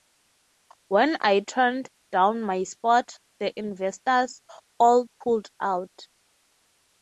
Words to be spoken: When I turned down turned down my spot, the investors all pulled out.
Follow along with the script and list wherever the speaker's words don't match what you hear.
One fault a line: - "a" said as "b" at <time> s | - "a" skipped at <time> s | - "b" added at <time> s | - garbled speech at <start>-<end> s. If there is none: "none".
- "turned down" skipped at 2.4 s